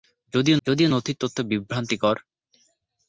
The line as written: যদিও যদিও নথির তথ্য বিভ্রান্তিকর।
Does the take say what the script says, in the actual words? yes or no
yes